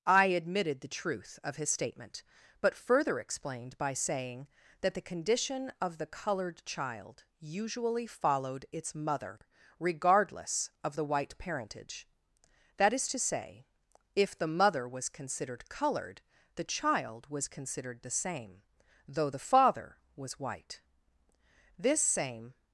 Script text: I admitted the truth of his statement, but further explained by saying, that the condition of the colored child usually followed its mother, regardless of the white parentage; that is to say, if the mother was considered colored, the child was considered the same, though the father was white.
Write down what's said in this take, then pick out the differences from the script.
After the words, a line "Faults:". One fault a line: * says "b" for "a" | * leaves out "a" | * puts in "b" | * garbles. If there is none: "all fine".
I admitted the truth of his statement, but further explained by saying, that the condition of the colored child usually followed its mother, regardless of the white parentage; that is to say, if the mother was considered colored, the child was considered the same, though the father was white. This same
Faults:
* puts in "This same"